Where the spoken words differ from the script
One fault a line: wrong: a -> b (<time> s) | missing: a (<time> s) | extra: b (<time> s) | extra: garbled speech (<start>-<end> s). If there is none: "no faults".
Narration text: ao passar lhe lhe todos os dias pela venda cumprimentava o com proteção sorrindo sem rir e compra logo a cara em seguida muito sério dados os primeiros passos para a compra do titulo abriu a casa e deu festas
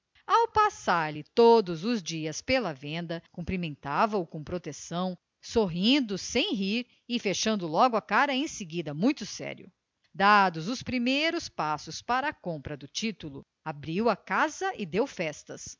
missing: lhe (1.2 s)
wrong: compra -> fechando (7.2 s)